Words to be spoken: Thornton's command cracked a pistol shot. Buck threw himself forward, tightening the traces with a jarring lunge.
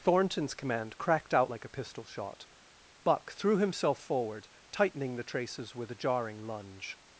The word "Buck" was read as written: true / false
true